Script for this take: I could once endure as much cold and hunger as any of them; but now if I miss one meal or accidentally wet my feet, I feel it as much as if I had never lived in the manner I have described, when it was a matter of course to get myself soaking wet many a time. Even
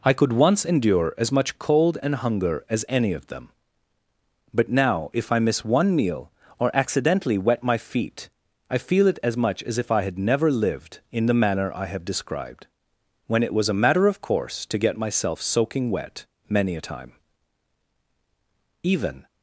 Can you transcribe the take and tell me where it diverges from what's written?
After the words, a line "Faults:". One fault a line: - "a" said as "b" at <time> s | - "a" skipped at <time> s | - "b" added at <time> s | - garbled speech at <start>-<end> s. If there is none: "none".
I could once endure as much cold and hunger as any of them; but now if I miss one meal or accidentally wet my feet, I feel it as much as if I had never lived in the manner I have described, when it was a matter of course to get myself soaking wet many a time. Even
Faults:
none